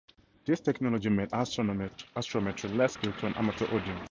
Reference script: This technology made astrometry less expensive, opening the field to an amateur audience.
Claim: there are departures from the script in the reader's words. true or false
true